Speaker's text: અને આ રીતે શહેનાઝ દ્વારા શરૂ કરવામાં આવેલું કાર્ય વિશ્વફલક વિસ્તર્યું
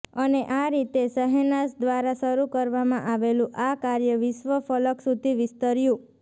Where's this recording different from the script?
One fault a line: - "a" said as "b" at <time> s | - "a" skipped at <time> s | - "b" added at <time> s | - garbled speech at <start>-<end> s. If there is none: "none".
- "આ" added at 3.6 s
- "સુધી" added at 5.1 s